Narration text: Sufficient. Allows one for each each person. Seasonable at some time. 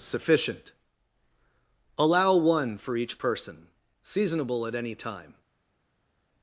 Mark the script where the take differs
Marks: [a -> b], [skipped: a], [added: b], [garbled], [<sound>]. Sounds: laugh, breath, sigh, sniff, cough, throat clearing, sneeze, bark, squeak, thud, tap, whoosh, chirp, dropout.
Sufficient. [Allows -> Allow] one for each [skipped: each] person. Seasonable at [some -> any] time.